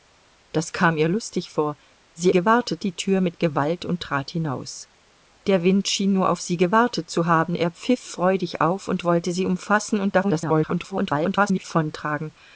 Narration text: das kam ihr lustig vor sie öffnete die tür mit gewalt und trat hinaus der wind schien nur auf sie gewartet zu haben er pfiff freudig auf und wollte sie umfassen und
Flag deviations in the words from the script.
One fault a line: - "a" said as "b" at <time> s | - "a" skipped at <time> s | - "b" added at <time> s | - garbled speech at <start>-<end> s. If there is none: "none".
- "öffnete" said as "gewartet" at 2.3 s
- garbled speech at 10.2-11.6 s